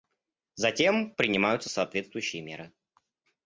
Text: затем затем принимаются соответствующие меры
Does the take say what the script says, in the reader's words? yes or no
no